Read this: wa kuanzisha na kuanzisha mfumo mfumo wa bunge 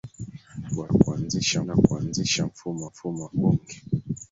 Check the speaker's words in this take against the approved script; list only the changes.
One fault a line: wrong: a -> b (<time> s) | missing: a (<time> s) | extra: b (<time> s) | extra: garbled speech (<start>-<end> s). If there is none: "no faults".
no faults